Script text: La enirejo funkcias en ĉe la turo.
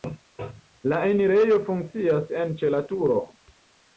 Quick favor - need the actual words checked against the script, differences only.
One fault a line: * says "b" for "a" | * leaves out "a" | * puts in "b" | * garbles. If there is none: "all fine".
all fine